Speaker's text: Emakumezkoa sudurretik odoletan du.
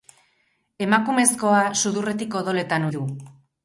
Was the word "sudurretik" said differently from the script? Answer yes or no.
no